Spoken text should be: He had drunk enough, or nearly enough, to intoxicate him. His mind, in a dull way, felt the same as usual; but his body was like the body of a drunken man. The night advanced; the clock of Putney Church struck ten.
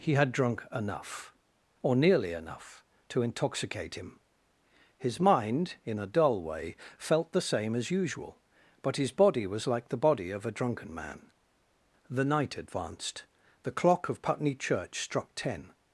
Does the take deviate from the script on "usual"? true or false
false